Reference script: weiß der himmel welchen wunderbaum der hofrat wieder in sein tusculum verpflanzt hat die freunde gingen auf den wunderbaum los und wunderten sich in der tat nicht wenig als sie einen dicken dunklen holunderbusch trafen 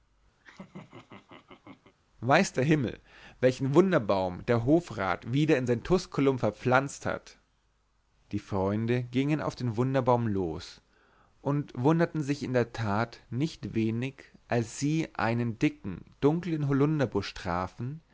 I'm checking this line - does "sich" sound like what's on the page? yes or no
yes